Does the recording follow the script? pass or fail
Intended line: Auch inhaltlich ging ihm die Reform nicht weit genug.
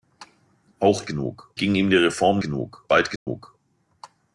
fail